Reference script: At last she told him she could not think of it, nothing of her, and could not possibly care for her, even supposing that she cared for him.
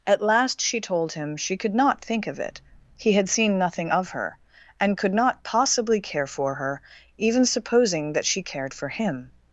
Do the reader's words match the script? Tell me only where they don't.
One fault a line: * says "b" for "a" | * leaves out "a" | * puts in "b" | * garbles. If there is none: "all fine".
* puts in "he had seen"